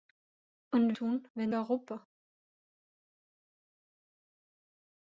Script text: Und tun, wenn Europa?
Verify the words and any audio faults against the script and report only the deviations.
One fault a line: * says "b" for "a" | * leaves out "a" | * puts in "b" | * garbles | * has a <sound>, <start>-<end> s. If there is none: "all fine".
all fine